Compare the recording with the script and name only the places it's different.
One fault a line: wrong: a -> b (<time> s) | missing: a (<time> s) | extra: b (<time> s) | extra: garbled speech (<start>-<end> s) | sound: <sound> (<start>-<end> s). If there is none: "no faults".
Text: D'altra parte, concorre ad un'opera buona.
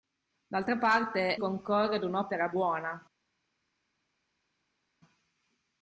no faults